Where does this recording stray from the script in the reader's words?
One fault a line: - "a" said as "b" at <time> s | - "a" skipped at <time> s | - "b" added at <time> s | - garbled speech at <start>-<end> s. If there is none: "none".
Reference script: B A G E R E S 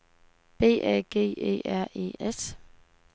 none